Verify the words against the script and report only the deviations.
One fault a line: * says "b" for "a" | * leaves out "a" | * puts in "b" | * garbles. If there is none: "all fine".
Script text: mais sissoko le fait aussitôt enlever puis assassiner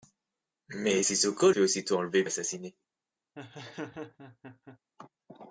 * leaves out "le"
* leaves out "puis"